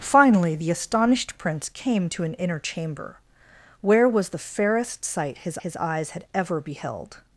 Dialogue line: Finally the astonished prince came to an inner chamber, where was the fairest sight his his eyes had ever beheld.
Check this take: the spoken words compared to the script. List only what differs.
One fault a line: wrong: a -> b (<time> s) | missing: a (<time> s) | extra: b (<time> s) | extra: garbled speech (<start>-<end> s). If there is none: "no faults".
no faults